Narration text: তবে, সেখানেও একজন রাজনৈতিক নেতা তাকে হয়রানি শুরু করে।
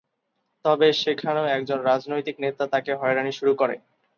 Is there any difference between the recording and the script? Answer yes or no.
no